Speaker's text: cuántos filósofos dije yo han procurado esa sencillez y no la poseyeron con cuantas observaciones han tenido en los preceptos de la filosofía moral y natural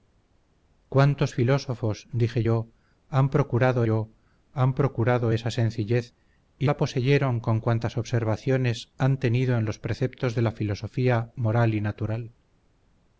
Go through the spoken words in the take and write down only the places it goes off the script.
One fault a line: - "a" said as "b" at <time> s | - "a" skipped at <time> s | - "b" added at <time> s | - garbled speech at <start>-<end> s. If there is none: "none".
- "yo han procurado" added at 3.8 s
- "no" skipped at 6.7 s